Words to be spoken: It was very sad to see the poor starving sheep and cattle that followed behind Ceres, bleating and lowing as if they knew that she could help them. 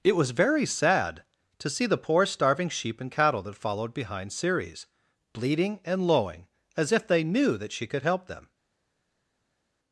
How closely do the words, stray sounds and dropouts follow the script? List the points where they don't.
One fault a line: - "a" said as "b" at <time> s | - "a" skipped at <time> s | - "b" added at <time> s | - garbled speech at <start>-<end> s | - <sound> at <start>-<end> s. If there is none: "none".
none